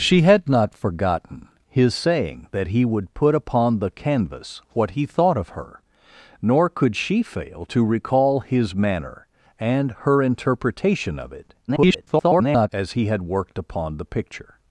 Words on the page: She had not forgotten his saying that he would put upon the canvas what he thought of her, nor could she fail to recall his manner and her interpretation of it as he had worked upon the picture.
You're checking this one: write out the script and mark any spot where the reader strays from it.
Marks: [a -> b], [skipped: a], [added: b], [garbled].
She had not forgotten his saying that he would put upon the canvas what he thought of her, nor could she fail to recall his manner and her interpretation of it [garbled] as he had worked upon the picture.